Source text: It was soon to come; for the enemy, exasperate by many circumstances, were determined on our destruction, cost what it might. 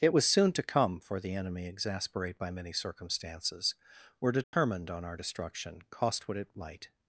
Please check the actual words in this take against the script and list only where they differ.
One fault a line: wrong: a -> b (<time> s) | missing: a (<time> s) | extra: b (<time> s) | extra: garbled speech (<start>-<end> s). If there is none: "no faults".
no faults